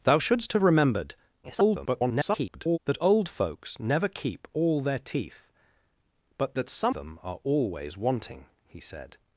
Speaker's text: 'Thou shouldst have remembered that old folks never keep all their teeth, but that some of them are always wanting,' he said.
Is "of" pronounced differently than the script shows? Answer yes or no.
yes